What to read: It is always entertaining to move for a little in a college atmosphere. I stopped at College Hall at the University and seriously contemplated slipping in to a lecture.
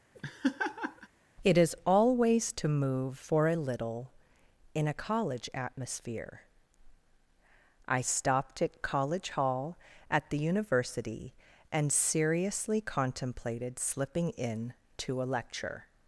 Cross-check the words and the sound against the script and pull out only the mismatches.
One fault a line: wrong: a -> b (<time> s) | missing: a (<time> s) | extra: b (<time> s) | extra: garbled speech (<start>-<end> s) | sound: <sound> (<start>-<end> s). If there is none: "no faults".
sound: laugh (0.1-1.1 s)
missing: entertaining (2.5 s)